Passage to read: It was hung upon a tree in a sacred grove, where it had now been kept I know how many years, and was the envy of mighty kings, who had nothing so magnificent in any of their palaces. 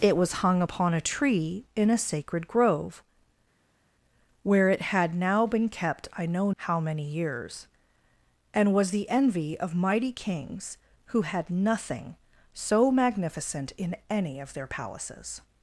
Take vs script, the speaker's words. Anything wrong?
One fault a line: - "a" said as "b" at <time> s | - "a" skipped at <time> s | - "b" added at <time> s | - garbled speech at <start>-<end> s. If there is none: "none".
none